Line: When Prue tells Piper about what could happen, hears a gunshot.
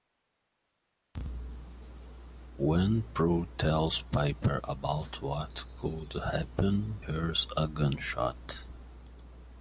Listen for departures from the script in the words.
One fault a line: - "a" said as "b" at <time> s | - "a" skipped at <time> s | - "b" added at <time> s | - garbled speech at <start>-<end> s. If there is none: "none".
none